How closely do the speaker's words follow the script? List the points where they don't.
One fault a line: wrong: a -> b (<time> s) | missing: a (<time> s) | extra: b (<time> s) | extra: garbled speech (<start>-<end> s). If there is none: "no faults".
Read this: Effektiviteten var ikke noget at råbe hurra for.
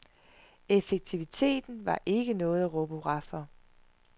no faults